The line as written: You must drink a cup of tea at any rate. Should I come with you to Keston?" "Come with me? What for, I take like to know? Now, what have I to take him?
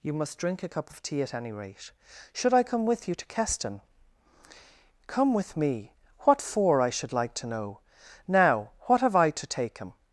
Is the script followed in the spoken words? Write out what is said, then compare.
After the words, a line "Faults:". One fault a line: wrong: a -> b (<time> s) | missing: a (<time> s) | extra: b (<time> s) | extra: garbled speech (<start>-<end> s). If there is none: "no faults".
You must drink a cup of tea at any rate. Should I come with you to Keston?" "Come with me? What for, I should like to know? Now, what have I to take him?
Faults:
wrong: take -> should (6.9 s)